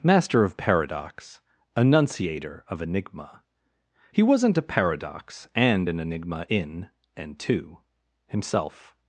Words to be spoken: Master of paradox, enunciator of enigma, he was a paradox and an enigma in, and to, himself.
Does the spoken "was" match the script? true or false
false